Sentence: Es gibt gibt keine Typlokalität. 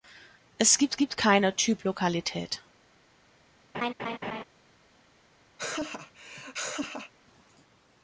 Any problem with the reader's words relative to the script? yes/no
no